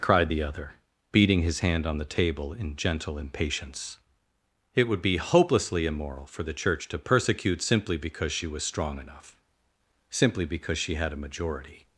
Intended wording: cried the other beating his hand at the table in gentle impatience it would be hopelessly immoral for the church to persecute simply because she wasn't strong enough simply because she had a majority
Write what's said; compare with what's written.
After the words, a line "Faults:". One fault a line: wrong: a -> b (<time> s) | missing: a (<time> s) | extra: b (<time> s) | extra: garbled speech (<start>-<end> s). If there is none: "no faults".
cried the other beating his hand on the table in gentle impatience it would be hopelessly immoral for the church to persecute simply because she was strong enough simply because she had a majority
Faults:
wrong: at -> on (1.8 s)
wrong: wasn't -> was (8.5 s)